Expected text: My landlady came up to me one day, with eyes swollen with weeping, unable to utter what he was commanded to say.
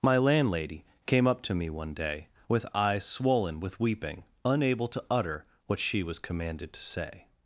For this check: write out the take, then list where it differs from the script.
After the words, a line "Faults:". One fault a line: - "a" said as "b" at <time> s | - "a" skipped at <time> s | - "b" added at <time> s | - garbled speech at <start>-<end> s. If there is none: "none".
My landlady came up to me one day, with eyes swollen with weeping, unable to utter what she was commanded to say.
Faults:
- "he" said as "she" at 5.8 s